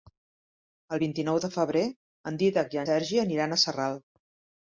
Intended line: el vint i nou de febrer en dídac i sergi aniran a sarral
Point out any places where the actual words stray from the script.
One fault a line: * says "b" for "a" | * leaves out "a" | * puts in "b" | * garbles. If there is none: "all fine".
all fine